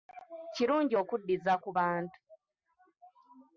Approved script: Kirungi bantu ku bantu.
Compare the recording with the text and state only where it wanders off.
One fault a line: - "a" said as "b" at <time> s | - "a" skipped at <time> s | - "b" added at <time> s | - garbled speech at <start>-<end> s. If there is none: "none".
- "bantu" said as "okuddiza" at 1.0 s